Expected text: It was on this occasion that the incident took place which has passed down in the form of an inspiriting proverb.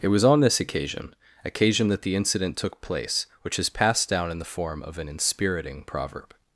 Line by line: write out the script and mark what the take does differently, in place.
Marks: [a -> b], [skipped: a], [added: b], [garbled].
It was on this occasion [added: occasion] that the incident took place which has passed down in the form of an inspiriting proverb.